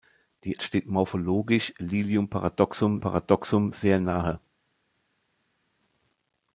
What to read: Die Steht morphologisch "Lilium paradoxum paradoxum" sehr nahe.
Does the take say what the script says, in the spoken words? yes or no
yes